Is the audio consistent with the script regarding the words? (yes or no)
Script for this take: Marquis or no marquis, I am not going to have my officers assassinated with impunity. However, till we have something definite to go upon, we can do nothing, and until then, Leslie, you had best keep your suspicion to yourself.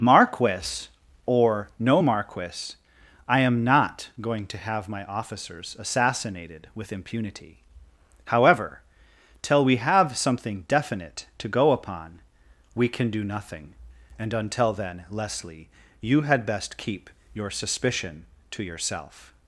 yes